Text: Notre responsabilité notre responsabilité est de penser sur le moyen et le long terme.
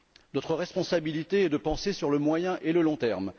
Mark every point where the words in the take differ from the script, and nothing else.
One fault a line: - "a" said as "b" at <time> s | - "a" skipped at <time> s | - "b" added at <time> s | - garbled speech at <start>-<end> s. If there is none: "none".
- "notre responsabilité" skipped at 1.4 s